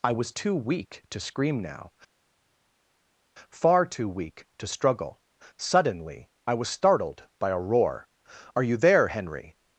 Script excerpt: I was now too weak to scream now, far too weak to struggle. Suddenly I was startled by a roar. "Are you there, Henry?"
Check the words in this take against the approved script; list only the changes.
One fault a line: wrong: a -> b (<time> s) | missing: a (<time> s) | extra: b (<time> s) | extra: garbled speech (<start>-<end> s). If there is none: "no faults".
missing: now (0.3 s)